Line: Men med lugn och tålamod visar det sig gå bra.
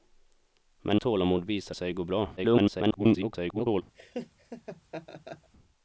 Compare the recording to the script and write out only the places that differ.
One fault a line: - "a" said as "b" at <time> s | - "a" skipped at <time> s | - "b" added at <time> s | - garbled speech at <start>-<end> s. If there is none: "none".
- "med lugn och" skipped at 1.0 s
- "det" skipped at 1.7 s
- garbled speech at 2.4-3.8 s